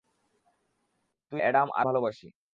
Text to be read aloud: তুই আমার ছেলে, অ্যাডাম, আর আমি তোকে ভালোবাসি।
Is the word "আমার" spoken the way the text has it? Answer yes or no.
no